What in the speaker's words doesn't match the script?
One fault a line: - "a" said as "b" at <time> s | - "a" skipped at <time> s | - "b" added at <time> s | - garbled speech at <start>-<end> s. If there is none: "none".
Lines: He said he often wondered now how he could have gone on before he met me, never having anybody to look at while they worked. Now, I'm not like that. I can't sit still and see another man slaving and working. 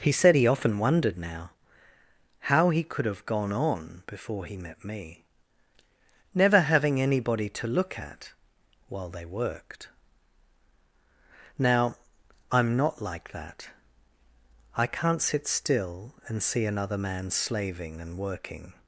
none